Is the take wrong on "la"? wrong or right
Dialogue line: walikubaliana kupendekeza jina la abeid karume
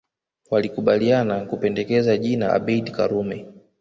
wrong